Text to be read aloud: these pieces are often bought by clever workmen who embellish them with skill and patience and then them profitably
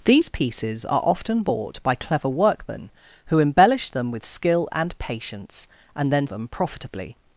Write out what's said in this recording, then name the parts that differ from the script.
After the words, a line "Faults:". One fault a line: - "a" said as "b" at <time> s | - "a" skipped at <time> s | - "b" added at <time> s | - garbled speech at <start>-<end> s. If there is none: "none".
these pieces are often bought by clever workmen who embellish them with skill and patience and then them profitably
Faults:
none